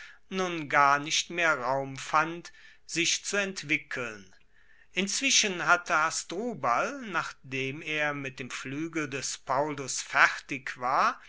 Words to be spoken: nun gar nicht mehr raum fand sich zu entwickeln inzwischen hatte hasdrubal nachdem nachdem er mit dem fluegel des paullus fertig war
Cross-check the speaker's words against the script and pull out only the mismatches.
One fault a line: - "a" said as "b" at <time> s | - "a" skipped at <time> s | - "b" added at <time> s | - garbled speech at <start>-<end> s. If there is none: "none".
- "nachdem" skipped at 7.8 s